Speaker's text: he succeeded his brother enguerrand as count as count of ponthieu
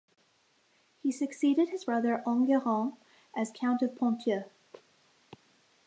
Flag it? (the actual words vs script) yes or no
yes